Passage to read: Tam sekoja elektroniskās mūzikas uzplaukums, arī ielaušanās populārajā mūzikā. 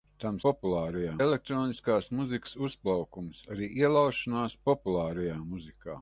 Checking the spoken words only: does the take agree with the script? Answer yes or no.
no